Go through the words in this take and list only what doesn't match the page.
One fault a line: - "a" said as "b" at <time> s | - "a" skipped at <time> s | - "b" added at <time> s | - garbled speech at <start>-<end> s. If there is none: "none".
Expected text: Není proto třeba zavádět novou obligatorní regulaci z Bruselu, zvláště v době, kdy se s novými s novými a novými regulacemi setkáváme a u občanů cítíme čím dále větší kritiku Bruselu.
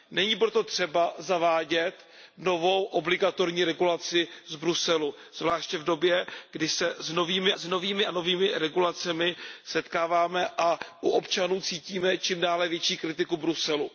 none